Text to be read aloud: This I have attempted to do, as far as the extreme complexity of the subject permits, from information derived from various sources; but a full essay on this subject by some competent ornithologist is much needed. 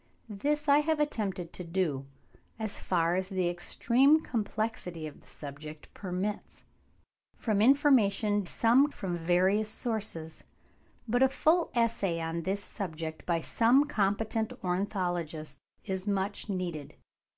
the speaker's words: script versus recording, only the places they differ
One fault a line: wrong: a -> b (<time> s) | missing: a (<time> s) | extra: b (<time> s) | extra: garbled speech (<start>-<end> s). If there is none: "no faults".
wrong: derived -> some (8.4 s)